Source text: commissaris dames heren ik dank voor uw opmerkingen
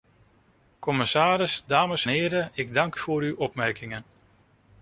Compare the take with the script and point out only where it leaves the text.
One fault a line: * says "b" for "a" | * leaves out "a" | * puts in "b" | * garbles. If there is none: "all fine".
all fine